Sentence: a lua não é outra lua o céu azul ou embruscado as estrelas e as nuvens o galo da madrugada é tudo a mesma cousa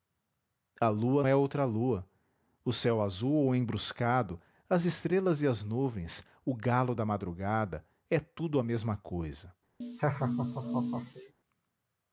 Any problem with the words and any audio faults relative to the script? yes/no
yes